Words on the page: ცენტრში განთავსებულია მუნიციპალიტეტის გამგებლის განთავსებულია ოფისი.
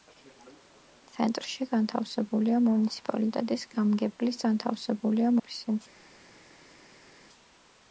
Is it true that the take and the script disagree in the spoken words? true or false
false